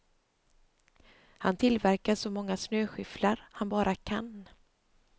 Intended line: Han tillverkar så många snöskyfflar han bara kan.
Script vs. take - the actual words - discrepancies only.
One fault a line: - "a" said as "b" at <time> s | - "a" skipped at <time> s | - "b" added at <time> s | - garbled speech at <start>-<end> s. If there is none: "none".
none